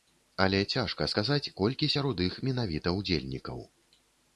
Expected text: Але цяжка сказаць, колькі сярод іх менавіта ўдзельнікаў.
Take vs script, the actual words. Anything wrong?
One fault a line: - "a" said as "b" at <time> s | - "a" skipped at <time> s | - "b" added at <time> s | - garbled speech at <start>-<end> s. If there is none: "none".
none